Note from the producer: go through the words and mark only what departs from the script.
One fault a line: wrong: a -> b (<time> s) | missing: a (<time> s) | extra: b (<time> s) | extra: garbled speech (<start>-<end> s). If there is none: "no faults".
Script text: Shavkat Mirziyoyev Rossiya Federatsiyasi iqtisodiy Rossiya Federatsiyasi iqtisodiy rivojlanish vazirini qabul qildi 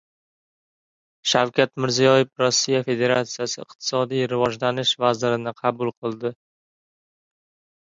missing: Rossiya Federatsiyasi iqtisodiy (4.3 s)